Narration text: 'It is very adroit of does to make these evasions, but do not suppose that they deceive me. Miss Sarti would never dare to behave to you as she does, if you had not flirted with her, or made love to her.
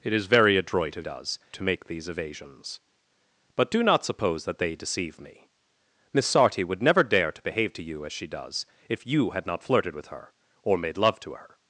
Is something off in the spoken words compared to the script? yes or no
no